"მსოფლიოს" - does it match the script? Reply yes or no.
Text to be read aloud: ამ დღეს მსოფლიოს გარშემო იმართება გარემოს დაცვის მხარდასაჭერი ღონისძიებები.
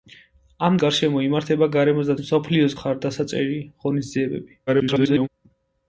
no